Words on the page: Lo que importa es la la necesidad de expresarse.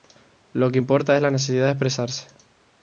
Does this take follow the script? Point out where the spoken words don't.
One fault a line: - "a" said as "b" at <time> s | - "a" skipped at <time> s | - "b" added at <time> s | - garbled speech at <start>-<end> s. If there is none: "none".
- "la" skipped at 1.3 s